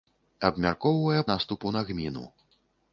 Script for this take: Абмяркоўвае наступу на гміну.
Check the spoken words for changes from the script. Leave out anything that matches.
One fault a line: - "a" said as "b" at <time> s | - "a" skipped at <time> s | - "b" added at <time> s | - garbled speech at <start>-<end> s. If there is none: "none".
none